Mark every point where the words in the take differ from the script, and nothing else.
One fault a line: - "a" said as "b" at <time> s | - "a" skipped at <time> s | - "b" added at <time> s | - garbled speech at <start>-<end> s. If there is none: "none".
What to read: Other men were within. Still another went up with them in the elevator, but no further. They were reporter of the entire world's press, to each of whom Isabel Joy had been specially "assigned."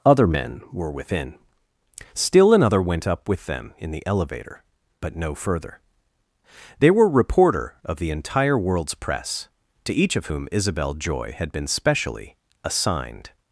none